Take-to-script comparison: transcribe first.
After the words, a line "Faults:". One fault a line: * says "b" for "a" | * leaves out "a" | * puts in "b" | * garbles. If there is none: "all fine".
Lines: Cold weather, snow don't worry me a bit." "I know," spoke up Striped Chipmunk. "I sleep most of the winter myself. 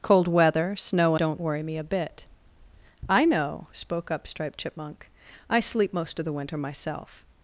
Cold weather, snow don't worry me a bit." "I know," spoke up Striped Chipmunk. "I sleep most of the winter myself.
Faults:
all fine